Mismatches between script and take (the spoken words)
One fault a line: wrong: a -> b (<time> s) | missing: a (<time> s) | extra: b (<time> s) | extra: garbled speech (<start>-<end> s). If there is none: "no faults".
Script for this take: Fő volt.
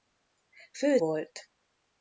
no faults